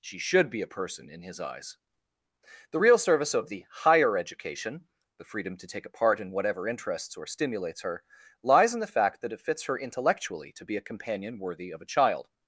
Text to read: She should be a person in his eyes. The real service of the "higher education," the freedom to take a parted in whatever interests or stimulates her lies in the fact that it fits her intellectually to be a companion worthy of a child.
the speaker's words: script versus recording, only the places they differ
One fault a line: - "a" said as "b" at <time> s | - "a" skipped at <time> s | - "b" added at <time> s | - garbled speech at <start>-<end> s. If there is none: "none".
- "parted" said as "part" at 5.9 s